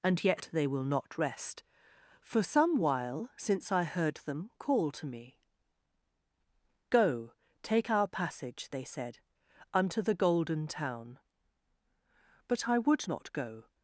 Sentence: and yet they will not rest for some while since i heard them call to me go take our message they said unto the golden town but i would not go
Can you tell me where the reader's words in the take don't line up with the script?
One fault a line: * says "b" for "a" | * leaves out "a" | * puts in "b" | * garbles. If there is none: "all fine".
* says "passage" for "message"